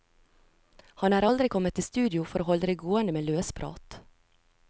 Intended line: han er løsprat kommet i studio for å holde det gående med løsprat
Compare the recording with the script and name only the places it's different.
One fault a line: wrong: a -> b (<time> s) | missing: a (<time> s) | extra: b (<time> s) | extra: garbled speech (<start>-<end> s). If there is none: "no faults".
wrong: løsprat -> aldri (1.2 s)